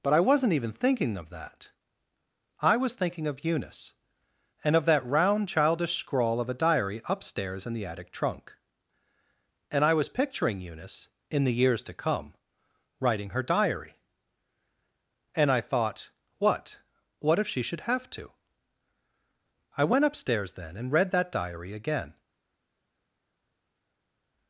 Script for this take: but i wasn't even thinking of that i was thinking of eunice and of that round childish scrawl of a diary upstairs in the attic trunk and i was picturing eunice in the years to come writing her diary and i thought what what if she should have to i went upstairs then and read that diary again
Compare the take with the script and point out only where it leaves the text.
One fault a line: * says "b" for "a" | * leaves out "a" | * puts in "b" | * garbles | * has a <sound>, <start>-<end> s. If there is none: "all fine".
all fine